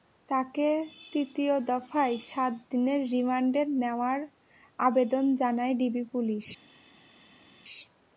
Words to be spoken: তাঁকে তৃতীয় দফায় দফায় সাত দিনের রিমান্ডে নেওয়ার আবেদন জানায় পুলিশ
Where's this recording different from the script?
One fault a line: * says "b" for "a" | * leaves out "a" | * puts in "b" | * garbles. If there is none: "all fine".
* leaves out "দফায়"
* puts in "ডিবি"